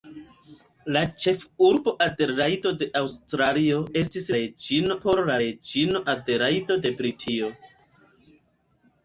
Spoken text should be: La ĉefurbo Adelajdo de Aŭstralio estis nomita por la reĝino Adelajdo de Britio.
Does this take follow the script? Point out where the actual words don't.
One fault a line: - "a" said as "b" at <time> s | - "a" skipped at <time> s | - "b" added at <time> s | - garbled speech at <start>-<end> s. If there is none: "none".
- "nomita" said as "reĝino" at 4.4 s